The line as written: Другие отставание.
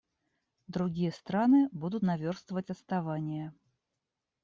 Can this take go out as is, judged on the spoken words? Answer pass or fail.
fail